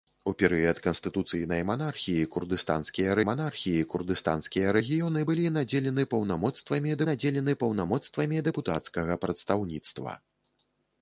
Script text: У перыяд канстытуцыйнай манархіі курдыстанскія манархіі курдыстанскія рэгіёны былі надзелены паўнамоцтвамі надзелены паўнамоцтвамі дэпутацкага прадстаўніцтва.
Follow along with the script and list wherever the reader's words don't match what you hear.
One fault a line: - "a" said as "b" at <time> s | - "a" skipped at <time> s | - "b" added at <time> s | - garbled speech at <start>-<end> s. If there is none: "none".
none